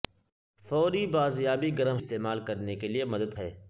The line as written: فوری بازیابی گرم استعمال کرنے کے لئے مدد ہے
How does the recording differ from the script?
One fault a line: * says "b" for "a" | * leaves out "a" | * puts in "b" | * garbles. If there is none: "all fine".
all fine